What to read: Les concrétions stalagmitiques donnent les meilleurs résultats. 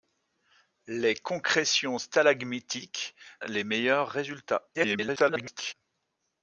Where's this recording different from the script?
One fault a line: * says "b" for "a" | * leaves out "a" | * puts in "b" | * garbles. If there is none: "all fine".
* leaves out "donnent"
* garbles